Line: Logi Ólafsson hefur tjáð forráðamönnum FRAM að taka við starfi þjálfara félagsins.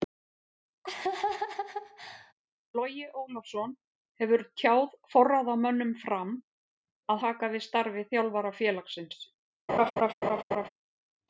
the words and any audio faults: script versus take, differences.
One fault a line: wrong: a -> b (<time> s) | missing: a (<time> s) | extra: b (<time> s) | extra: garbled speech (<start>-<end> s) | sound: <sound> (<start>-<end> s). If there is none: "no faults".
sound: laugh (0.8-2.3 s)
sound: laugh (9.7-10.7 s)